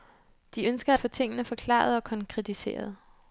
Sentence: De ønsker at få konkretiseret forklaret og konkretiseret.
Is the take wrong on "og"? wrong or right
right